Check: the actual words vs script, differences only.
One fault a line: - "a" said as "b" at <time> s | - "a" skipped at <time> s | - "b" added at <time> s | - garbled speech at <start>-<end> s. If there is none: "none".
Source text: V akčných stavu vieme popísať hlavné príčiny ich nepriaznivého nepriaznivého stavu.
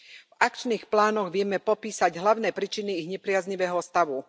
- "stavu" said as "plánoch" at 0.9 s
- "nepriaznivého" skipped at 3.8 s